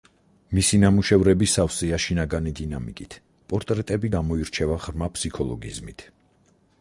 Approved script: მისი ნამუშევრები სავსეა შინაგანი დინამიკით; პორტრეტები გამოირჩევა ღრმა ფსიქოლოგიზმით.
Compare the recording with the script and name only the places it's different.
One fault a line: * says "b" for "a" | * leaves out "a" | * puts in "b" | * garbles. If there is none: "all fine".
all fine